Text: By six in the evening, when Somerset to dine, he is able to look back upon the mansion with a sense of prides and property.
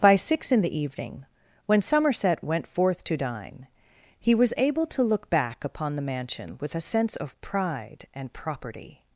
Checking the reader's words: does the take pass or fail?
fail